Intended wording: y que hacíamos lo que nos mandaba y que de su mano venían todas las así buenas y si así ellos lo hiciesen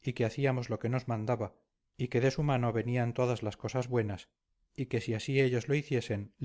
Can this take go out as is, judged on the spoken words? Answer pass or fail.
fail